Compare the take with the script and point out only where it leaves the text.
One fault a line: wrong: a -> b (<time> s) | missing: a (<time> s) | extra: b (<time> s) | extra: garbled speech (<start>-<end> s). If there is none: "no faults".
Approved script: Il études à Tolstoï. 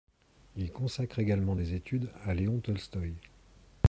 extra: consacre également des (0.7 s)
extra: Léon (2.3 s)